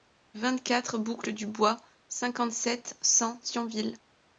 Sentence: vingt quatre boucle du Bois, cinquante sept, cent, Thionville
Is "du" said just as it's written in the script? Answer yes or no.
yes